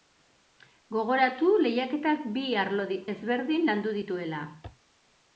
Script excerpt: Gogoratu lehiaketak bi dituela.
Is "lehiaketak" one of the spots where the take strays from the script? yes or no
no